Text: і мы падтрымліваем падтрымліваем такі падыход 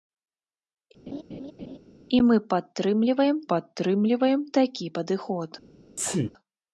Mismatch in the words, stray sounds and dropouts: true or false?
true